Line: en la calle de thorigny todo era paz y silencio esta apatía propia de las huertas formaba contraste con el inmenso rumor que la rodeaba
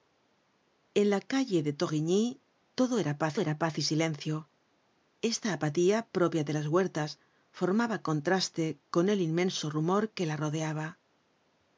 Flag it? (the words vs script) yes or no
yes